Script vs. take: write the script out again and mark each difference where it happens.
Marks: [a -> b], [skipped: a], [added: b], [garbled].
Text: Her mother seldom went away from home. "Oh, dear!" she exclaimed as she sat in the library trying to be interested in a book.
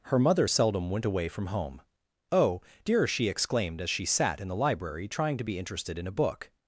Her mother seldom went away from home. "Oh, dear!" she exclaimed as she sat in the library trying to be interested in a book.